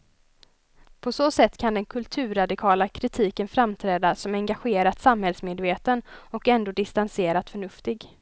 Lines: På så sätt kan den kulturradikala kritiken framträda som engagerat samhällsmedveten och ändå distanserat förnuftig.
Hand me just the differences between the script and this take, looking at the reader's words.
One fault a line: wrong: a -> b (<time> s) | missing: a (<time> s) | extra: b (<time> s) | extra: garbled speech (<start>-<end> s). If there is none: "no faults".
no faults